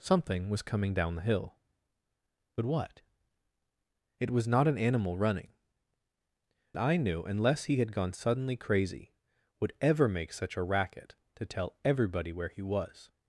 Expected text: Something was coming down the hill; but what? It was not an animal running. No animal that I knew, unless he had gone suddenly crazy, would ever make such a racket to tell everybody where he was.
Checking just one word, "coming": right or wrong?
right